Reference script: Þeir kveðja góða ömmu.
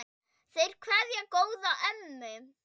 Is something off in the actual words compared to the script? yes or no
no